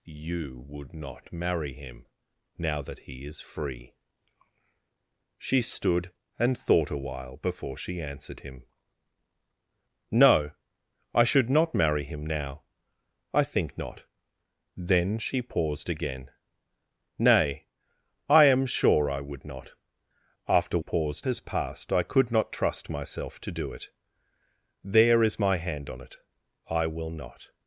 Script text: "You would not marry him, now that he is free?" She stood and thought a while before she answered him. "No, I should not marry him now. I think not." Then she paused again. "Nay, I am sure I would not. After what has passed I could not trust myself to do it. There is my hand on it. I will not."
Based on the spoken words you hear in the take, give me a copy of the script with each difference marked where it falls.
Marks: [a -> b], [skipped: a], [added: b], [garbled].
"You would not marry him, now that he is free?" She stood and thought a while before she answered him. "No, I should not marry him now. I think not." Then she paused again. "Nay, I am sure I would not. After [what -> paused] has passed I could not trust myself to do it. There is my hand on it. I will not."